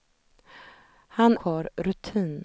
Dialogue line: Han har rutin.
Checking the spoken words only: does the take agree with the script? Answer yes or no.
yes